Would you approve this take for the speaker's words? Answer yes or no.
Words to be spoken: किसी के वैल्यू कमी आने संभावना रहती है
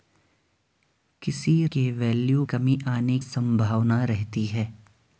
yes